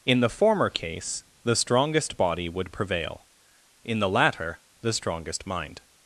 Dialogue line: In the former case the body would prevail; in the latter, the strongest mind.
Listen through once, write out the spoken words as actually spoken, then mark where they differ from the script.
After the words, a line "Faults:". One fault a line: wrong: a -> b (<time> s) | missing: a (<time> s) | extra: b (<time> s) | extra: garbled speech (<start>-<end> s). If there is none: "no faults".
In the former case the strongest body would prevail; in the latter, the strongest mind.
Faults:
extra: strongest (1.6 s)